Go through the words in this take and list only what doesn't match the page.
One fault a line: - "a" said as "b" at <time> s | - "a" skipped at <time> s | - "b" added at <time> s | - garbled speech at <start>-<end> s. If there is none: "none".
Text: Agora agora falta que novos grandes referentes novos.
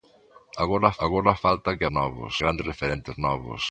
none